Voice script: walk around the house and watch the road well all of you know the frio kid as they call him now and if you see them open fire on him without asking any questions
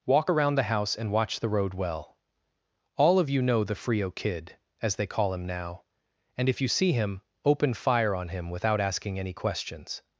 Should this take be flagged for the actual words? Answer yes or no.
yes